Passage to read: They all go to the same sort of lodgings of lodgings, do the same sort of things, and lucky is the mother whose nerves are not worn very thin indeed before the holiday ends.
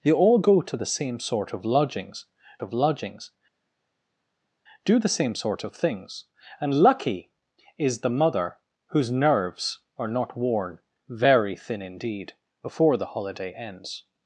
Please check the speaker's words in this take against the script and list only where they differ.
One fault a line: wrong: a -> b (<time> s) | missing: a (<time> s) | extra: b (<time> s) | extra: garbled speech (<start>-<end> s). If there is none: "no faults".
no faults